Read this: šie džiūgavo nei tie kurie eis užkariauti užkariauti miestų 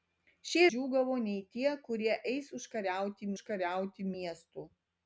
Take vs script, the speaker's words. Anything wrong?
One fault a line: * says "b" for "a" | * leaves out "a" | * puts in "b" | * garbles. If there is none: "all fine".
all fine